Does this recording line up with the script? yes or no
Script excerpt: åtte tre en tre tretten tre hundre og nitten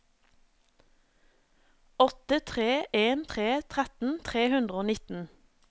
yes